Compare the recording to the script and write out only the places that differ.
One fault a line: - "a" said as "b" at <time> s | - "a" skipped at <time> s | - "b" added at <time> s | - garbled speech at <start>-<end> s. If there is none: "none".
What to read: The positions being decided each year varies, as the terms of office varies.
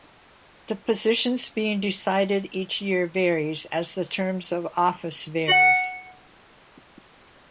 none